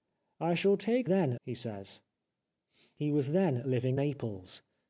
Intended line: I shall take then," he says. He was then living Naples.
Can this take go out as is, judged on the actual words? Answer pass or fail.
pass